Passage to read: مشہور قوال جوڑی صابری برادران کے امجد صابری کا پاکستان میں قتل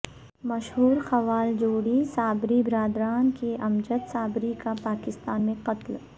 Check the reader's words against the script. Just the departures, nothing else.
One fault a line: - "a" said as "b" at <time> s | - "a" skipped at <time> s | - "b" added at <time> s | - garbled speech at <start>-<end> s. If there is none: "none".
none